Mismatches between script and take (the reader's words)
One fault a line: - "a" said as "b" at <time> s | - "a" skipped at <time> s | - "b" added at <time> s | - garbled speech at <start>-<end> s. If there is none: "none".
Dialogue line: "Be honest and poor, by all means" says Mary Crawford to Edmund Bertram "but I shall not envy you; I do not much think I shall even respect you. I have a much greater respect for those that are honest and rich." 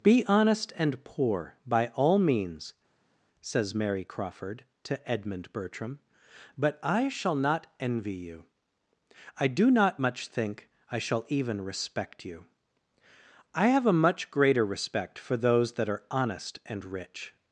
none